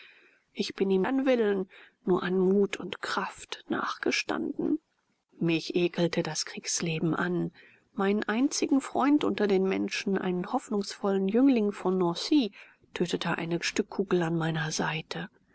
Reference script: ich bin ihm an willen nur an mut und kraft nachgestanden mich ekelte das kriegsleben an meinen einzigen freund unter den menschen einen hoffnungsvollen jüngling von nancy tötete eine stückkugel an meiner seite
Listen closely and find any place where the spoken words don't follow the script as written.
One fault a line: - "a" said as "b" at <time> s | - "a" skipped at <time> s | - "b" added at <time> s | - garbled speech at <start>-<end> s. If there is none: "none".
none